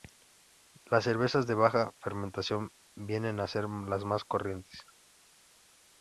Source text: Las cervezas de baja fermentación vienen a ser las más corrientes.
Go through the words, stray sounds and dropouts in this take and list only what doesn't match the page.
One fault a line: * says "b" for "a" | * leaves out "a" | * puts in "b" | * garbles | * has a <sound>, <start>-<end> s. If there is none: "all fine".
all fine